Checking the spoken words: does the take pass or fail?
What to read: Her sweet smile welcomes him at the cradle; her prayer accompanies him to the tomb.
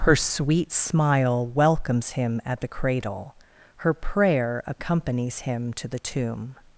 pass